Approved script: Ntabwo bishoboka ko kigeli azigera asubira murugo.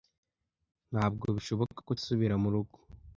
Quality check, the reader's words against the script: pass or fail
fail